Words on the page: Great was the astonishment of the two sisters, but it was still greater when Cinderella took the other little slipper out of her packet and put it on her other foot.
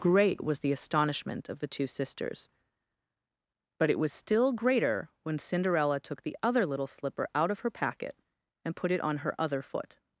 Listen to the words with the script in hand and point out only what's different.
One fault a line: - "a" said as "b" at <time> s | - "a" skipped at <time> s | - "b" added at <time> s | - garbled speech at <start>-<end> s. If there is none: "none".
none